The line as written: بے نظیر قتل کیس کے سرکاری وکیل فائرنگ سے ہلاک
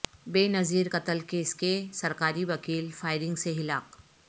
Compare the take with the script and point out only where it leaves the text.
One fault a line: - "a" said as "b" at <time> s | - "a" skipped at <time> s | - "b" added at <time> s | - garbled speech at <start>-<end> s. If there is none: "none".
none